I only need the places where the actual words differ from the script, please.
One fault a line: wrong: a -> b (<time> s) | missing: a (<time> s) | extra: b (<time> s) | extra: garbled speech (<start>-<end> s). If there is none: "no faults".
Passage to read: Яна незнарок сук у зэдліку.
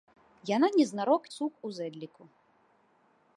no faults